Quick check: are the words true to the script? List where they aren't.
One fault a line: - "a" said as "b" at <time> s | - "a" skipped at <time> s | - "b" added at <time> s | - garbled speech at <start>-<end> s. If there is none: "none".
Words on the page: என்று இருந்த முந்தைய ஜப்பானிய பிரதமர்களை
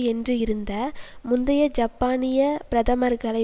none